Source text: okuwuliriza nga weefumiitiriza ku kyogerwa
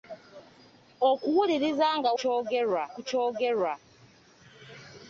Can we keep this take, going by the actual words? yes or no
no